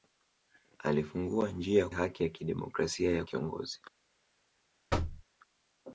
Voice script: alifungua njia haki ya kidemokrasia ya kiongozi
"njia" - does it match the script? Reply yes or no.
yes